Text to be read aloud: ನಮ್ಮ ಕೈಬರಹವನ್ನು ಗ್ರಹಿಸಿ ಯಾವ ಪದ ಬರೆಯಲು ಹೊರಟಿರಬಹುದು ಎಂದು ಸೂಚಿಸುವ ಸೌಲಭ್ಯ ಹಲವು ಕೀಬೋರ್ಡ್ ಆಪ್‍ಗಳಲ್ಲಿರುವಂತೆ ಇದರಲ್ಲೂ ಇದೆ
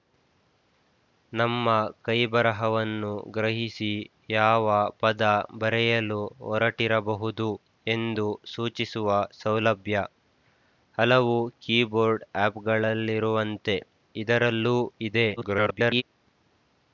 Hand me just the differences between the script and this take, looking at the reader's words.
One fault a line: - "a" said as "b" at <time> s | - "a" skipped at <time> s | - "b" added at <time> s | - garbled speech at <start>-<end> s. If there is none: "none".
- garbled speech at 15.4-16.0 s